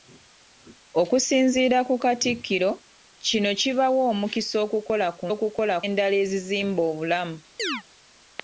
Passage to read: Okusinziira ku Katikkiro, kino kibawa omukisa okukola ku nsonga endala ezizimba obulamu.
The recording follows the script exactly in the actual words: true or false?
false